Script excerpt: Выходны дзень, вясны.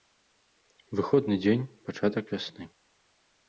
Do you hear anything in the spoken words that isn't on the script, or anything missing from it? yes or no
yes